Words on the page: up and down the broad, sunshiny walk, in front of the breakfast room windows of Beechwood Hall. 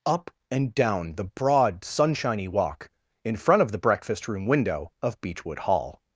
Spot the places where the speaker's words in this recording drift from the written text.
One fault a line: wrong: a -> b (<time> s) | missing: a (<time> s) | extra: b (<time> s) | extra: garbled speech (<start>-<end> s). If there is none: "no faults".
wrong: windows -> window (4.5 s)